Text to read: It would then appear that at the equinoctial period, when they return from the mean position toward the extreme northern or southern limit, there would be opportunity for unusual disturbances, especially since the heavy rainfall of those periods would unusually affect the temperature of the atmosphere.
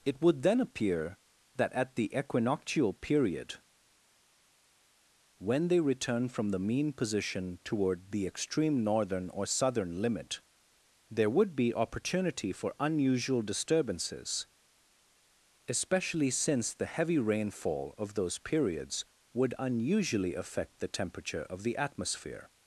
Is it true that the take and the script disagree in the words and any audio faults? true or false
false